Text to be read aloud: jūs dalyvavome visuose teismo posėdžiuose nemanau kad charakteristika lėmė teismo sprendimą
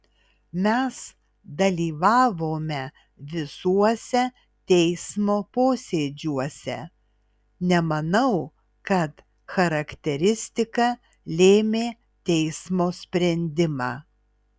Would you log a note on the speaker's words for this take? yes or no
yes